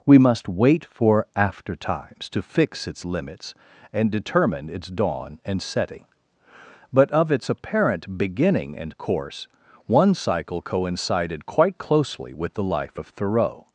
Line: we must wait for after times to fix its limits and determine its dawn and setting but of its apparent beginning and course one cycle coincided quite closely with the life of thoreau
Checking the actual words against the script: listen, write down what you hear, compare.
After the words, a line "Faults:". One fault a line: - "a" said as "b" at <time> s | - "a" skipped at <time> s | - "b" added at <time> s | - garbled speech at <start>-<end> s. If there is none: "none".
we must wait for after times to fix its limits and determine its dawn and setting but of its apparent beginning and course one cycle coincided quite closely with the life of thoreau
Faults:
none